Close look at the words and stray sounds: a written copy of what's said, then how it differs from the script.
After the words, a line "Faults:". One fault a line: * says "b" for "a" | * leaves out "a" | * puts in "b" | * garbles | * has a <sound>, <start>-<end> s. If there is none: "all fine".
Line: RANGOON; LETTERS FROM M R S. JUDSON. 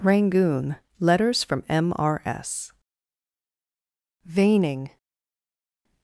RANGOON; LETTERS FROM M R S. Veining.
Faults:
* says "Veining" for "JUDSON"